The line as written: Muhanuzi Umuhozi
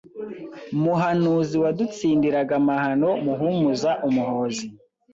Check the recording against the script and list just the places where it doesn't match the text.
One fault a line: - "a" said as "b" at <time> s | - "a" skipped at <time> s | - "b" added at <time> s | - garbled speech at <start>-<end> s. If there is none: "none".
- "wadutsindiraga amahano Muhumuza" added at 1.6 s